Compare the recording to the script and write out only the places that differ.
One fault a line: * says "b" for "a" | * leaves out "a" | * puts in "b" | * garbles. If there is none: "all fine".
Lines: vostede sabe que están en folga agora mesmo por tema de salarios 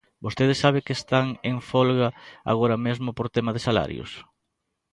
all fine